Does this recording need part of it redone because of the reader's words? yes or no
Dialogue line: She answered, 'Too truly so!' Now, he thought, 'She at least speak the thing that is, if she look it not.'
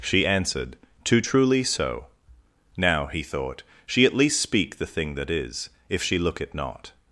no